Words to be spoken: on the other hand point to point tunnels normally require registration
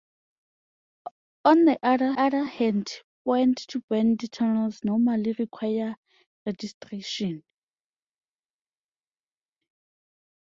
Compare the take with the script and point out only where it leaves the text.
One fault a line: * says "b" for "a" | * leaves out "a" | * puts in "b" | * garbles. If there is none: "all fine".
* puts in "other"